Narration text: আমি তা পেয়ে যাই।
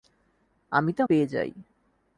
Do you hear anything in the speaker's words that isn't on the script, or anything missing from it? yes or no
no